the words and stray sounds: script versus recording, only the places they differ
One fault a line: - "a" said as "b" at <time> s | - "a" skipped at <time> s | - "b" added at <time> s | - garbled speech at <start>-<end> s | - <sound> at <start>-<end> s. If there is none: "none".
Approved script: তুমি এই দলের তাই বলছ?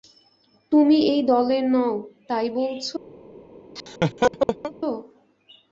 - "নও" added at 1.7 s
- laugh at 3.8-4.7 s